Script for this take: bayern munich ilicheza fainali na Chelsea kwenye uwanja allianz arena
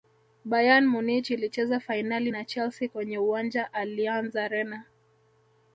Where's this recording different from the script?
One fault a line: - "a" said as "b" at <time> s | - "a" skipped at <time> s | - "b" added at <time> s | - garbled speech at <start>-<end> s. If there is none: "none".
none